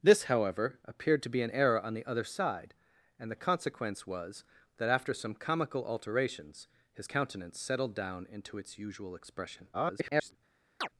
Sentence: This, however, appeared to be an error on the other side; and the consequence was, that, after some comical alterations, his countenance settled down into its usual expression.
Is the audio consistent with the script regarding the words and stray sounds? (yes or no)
no